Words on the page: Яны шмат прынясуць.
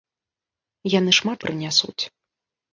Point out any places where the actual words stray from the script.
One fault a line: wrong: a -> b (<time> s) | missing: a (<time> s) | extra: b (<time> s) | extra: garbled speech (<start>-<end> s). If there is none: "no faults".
no faults